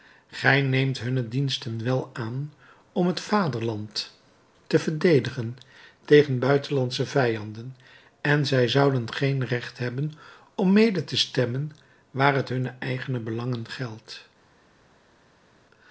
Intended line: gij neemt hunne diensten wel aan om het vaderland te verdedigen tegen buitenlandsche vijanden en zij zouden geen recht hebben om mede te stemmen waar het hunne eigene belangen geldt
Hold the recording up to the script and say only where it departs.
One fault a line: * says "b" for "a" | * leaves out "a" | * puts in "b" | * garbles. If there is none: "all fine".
all fine